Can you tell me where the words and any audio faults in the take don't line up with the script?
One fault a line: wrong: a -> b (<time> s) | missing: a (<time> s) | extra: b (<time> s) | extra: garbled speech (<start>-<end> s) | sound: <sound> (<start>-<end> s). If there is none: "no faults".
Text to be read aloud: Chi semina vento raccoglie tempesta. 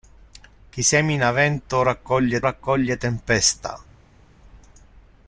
extra: raccoglie (2.4 s)